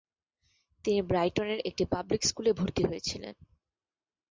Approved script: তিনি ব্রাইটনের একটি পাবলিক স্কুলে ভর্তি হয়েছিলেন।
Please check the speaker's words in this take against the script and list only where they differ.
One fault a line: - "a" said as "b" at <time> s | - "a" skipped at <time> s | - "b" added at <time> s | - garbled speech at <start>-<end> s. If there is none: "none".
none